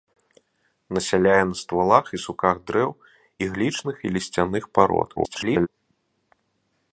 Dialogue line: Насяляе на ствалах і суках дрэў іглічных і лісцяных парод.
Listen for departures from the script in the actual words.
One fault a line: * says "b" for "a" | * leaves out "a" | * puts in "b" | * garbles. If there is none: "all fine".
* garbles